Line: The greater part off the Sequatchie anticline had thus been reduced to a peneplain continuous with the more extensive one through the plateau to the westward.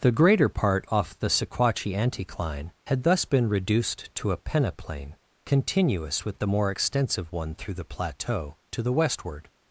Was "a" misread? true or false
false